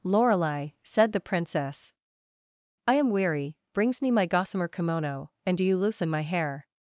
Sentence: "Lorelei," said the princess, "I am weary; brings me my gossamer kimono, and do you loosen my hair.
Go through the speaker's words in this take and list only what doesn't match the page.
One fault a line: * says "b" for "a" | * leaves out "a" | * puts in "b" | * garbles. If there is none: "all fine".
all fine